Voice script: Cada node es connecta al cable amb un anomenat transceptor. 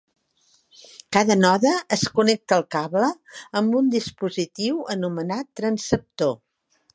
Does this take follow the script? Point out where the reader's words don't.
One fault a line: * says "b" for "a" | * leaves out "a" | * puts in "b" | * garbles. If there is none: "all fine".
* puts in "dispositiu"